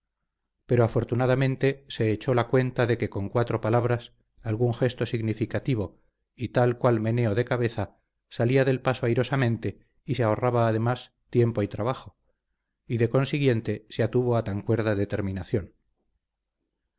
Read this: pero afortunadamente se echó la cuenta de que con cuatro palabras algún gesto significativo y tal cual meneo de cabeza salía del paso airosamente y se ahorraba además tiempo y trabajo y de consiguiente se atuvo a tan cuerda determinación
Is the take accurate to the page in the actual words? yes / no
yes